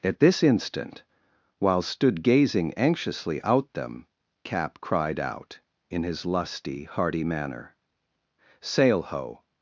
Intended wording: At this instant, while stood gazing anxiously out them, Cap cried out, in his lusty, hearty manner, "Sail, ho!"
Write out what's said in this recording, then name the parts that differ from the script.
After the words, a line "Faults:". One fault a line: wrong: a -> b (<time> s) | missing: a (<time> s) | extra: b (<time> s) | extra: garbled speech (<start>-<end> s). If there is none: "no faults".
At this instant, while stood gazing anxiously out them, Cap cried out, in his lusty, hearty manner, "Sail, ho!"
Faults:
no faults